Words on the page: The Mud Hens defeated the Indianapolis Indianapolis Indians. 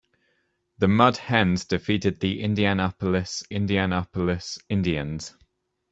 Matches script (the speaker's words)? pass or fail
pass